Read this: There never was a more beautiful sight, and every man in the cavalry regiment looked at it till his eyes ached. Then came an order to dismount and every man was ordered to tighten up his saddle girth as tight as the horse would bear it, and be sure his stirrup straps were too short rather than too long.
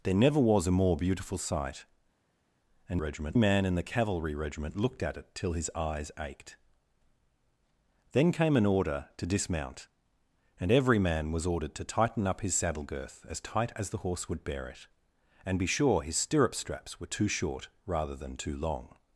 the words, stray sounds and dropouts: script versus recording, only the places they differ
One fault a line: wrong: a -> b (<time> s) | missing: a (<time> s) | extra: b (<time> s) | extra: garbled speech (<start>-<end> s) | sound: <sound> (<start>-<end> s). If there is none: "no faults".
wrong: every -> regiment (3.0 s)